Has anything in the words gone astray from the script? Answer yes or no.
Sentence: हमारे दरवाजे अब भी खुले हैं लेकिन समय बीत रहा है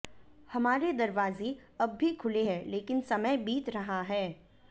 no